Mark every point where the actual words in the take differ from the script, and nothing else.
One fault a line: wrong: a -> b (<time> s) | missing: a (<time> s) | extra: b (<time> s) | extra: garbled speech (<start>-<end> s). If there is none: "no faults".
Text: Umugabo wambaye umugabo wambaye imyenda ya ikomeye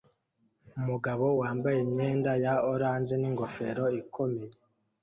wrong: umugabo wambaye imyenda ya -> imyenda ya orange ningofero (1.9 s)